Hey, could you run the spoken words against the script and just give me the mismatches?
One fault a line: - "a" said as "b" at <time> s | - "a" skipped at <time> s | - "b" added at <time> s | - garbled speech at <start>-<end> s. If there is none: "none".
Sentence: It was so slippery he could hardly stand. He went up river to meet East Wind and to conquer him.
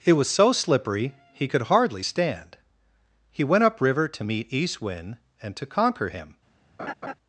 none